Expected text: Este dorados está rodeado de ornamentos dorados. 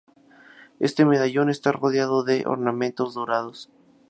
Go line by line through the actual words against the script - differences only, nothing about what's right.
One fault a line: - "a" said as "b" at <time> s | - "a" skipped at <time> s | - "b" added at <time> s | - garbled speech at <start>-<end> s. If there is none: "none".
- "dorados" said as "medallón" at 1.1 s